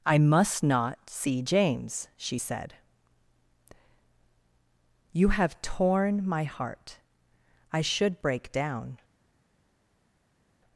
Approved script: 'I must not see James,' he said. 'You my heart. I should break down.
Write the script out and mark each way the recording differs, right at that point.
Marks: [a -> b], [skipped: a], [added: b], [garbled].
'I must not see James,' [he -> she] said. 'You [added: have torn] my heart. I should break down.